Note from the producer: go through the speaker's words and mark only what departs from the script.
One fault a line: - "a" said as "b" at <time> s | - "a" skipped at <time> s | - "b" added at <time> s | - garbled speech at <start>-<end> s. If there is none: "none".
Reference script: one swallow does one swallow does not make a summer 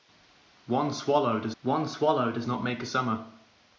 none